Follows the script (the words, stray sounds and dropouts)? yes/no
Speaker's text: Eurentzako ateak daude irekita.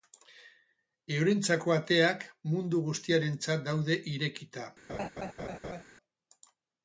no